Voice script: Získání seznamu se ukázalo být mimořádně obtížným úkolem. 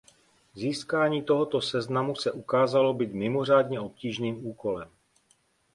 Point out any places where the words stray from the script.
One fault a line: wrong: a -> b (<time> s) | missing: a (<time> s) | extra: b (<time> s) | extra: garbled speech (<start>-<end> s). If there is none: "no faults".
extra: tohoto (1.2 s)